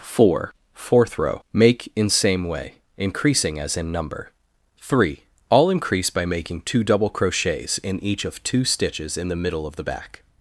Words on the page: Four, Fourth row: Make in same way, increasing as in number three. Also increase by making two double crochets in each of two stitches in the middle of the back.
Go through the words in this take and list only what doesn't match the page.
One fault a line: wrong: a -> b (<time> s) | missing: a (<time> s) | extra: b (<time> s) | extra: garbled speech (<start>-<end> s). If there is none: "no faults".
wrong: Also -> All (5.5 s)